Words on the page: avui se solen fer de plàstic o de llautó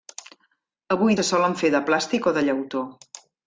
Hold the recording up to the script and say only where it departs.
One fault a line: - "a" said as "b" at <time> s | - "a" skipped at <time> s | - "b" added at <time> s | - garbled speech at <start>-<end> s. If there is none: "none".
none